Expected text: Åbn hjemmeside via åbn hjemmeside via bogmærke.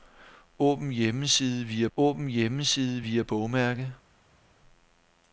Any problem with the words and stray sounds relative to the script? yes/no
no